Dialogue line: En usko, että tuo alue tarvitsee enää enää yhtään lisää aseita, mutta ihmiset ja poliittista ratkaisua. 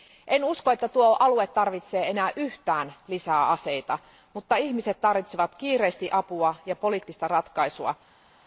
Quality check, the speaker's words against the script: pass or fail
fail